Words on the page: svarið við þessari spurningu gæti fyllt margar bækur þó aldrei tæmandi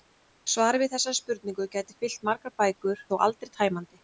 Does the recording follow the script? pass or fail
pass